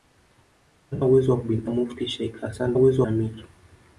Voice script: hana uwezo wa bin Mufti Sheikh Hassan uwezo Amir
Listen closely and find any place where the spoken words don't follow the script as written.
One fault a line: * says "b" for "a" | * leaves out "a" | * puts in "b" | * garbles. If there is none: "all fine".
all fine